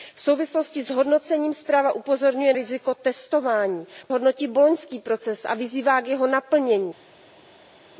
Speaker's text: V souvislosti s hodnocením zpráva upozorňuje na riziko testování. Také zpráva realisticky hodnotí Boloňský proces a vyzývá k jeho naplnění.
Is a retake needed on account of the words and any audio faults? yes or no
yes